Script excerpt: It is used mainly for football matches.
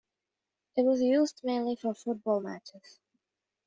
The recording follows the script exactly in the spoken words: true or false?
false